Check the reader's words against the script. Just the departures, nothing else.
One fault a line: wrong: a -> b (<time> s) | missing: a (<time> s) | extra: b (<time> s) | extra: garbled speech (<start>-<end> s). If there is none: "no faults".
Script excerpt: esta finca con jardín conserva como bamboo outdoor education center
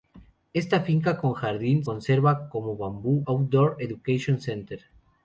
no faults